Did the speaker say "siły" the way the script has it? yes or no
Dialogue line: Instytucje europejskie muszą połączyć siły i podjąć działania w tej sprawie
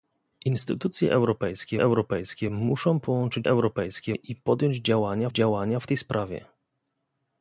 no